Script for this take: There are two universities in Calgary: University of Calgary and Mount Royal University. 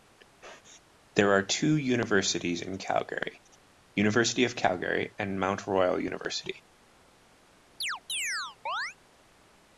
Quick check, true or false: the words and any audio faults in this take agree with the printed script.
false